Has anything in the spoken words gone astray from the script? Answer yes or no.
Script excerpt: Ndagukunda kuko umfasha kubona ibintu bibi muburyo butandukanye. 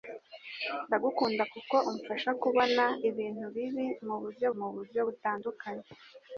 yes